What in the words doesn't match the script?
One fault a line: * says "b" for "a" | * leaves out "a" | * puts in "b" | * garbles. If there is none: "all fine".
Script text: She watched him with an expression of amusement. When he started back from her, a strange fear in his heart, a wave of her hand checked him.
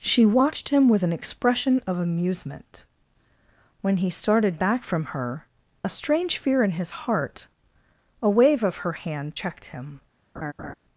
all fine